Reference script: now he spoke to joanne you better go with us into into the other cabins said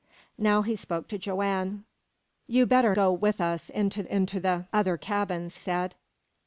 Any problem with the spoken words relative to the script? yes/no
no